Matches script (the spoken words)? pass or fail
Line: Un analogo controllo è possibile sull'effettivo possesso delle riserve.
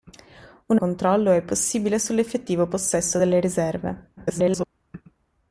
fail